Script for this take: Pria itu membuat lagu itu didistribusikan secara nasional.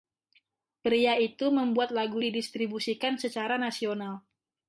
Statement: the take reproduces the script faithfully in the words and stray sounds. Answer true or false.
false